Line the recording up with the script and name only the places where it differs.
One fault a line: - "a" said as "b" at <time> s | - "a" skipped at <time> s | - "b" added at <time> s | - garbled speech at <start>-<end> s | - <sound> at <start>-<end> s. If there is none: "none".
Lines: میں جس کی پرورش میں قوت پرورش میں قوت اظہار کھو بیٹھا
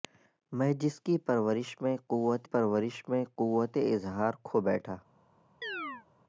- chirp at 5.6-6.1 s